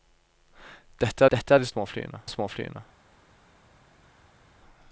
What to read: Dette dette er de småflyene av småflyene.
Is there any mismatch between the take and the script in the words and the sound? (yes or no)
no